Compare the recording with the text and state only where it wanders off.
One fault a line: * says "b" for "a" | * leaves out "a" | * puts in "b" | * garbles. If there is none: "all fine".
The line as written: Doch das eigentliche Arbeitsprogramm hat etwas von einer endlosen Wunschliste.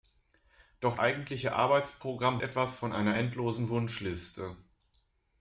* leaves out "das"
* leaves out "hat"